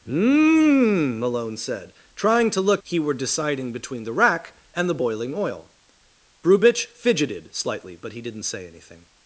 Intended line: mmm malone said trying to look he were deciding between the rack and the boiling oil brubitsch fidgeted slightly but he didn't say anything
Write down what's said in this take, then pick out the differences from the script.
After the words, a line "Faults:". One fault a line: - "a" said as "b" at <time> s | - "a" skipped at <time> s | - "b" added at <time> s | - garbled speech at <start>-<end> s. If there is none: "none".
mmm malone said trying to look he were deciding between the rack and the boiling oil brubitsch fidgeted slightly but he didn't say anything
Faults:
none